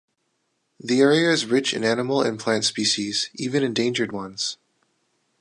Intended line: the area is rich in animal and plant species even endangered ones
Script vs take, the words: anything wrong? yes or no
no